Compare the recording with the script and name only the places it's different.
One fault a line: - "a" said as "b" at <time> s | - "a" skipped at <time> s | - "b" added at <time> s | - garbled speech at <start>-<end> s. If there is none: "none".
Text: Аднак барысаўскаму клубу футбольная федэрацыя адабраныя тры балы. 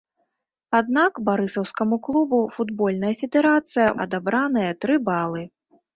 none